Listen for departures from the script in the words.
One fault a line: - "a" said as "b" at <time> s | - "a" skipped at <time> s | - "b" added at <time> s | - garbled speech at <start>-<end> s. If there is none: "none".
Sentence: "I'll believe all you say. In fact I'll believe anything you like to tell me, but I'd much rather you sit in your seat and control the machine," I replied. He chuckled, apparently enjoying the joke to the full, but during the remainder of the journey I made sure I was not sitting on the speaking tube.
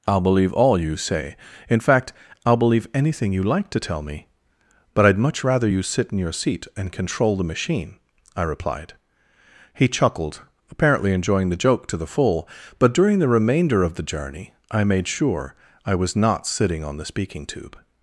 none